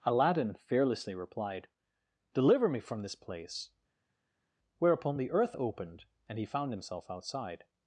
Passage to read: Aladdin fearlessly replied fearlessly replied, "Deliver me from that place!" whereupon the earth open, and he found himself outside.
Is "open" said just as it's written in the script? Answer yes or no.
no